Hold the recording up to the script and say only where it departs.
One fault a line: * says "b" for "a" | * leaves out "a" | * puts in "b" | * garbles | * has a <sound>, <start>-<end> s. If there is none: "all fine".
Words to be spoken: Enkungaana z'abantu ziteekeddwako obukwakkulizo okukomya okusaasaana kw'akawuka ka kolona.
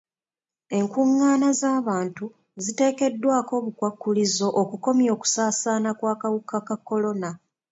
all fine